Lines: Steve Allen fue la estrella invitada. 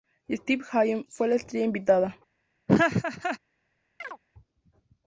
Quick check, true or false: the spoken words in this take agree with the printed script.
true